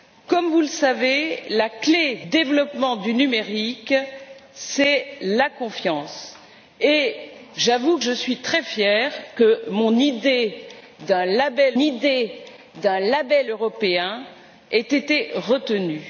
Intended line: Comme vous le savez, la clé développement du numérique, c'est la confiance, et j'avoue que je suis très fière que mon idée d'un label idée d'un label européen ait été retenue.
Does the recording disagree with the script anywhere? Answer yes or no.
no